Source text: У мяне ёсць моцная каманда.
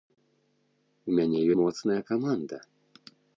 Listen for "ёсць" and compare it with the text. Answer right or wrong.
wrong